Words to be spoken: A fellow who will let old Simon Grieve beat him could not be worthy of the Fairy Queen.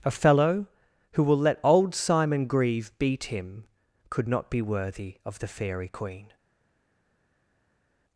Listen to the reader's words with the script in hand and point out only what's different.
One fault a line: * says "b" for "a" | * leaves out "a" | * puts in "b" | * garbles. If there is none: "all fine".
all fine